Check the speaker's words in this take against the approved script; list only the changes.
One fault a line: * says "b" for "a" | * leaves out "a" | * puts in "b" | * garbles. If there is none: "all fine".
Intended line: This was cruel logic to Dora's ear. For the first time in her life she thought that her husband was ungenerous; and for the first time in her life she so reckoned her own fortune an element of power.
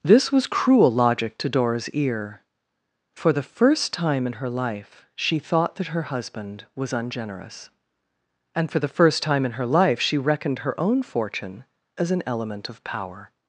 * leaves out "so"
* puts in "as"